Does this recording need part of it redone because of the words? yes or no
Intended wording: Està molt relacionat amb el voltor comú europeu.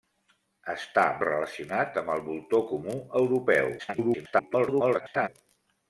yes